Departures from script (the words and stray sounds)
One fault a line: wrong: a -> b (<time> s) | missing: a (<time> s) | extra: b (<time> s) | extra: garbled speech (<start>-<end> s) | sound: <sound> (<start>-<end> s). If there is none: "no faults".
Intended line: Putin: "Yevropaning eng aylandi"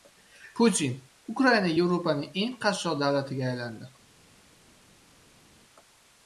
extra: Ukraina (1.3 s)
extra: qashshoq davlatiga (2.7 s)